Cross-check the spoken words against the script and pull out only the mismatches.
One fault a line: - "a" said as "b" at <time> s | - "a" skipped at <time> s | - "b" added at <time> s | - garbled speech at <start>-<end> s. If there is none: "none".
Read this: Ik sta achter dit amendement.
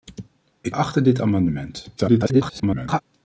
- "sta" skipped at 0.8 s
- garbled speech at 2.0-3.0 s